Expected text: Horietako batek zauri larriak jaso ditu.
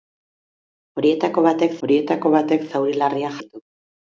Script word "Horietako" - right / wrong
right